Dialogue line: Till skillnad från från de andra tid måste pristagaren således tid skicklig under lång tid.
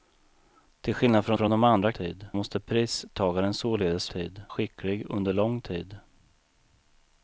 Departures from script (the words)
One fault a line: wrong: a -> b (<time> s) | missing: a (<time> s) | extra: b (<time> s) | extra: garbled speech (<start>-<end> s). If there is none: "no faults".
no faults